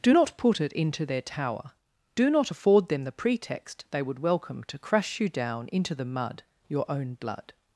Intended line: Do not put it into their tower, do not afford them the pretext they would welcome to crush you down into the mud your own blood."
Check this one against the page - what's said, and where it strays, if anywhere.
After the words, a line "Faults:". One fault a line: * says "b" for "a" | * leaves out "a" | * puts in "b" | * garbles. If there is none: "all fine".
Do not put it into their tower, do not afford them the pretext they would welcome to crush you down into the mud your own blood."
Faults:
all fine